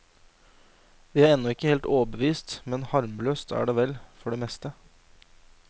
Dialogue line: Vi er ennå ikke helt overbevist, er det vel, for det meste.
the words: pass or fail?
fail